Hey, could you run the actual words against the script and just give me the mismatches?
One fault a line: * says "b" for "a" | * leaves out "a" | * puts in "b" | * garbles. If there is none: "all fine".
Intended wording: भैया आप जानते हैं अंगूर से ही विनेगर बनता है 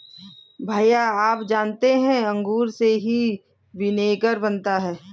all fine